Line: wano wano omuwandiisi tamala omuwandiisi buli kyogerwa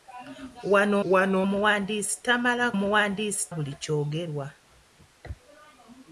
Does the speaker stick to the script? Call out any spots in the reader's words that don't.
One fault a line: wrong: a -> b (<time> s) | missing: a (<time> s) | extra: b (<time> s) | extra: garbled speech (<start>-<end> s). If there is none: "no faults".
no faults